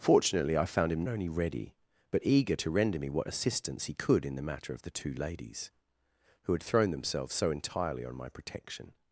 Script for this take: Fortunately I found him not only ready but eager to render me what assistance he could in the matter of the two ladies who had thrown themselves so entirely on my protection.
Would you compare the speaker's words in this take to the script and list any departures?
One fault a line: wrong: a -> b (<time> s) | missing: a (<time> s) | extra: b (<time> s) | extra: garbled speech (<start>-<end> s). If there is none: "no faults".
missing: not (1.1 s)